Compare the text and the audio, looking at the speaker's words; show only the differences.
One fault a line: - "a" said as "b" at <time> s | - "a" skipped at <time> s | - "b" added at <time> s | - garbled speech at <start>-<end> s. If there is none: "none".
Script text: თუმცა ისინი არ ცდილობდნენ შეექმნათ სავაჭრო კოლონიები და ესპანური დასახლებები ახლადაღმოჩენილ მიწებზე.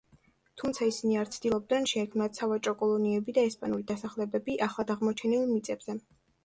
none